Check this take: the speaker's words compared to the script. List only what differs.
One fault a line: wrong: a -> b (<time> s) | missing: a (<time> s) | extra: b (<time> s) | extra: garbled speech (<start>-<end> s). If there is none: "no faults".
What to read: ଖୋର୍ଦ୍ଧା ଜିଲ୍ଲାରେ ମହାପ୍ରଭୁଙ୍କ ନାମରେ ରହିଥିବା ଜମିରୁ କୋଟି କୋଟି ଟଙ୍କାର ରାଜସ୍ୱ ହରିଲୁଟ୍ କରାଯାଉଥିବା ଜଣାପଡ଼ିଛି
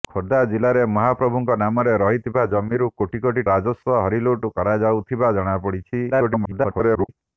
missing: ଟଙ୍କାର (3.4 s)
extra: garbled speech (6.1-7.1 s)